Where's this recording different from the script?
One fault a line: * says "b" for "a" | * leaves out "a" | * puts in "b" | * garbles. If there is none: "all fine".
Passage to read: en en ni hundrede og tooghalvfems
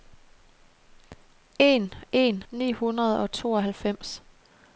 all fine